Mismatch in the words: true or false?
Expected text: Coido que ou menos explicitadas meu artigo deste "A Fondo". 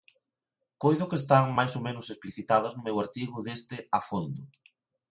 true